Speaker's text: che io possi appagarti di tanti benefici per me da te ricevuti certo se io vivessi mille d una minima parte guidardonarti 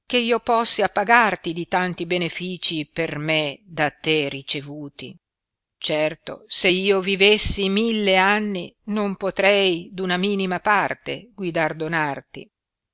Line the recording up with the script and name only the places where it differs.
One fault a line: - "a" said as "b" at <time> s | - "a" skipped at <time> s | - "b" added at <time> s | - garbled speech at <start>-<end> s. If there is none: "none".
- "anni non potrei" added at 8.2 s